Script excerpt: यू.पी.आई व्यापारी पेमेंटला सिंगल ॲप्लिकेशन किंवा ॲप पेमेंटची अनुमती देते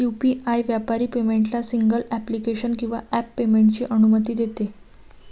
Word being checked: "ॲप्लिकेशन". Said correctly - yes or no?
yes